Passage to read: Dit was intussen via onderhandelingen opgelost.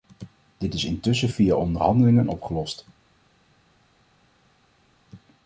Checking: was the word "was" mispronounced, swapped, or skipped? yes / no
yes